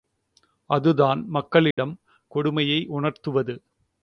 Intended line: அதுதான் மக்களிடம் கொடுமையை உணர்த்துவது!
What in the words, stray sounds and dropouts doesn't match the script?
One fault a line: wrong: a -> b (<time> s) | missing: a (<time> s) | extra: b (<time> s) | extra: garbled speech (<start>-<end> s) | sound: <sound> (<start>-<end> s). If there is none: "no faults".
sound: dropout (1.7-1.8 s)